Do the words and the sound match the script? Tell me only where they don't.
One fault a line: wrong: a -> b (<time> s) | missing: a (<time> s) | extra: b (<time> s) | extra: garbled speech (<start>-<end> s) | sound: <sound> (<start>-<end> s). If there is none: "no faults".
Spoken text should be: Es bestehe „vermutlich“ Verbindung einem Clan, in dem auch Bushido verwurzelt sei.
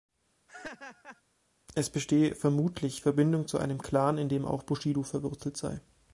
sound: laugh (0.5-1.2 s)
extra: zu (3.5 s)